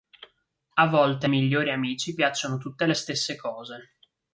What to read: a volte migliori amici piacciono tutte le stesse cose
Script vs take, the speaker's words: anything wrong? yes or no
no